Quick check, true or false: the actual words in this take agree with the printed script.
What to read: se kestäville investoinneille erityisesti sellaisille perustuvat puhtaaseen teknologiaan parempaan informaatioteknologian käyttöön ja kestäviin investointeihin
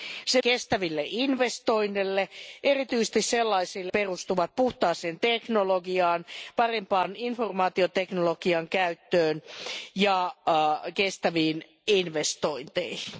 true